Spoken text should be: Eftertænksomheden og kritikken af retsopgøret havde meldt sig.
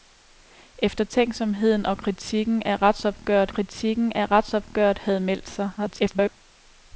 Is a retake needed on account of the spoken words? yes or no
yes